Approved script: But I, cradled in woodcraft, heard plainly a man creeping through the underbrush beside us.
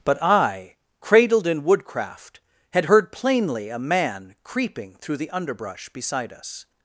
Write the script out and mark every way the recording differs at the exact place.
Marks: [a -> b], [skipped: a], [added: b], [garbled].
But I, cradled in woodcraft, [added: had] heard plainly a man creeping through the underbrush beside us.